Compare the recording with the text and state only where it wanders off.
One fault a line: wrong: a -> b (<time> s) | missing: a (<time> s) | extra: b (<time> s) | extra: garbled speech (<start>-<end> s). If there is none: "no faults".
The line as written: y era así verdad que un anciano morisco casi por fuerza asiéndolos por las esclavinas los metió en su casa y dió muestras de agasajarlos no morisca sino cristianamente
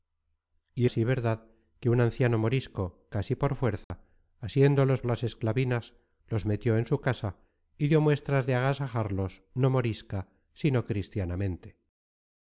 missing: era (0.9 s)
missing: por (5.0 s)